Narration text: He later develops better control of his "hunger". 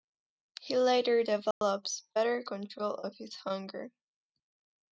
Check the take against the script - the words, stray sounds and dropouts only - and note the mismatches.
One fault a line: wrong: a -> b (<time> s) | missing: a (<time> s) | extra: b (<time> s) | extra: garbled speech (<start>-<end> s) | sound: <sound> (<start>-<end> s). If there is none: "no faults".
sound: dropout (1.5-1.6 s)